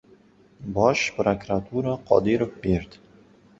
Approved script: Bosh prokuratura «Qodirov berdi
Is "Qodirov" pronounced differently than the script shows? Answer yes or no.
no